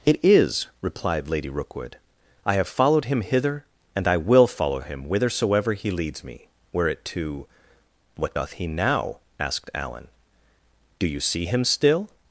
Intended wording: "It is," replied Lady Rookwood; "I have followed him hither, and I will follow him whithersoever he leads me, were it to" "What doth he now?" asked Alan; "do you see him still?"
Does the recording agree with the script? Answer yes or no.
yes